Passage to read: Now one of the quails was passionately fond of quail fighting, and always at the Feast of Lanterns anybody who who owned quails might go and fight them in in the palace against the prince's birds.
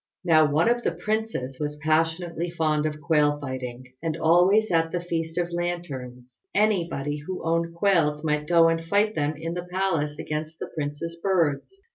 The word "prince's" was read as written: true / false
true